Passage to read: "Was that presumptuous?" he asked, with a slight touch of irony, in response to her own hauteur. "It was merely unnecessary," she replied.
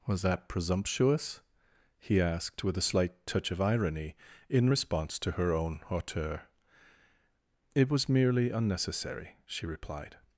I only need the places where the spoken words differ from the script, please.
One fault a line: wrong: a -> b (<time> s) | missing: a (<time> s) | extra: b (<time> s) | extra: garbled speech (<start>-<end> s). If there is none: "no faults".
no faults